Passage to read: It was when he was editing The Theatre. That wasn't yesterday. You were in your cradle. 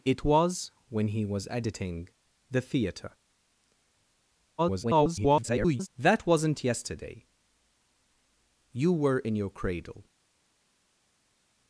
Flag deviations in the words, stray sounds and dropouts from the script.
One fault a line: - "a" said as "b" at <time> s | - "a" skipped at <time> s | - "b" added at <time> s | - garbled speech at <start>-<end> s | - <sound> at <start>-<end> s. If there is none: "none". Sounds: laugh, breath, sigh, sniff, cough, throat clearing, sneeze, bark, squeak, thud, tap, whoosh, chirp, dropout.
- garbled speech at 4.6-5.9 s